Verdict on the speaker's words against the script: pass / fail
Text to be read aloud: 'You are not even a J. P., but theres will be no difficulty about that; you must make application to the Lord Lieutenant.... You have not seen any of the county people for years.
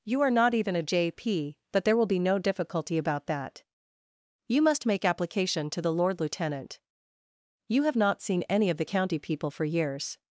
fail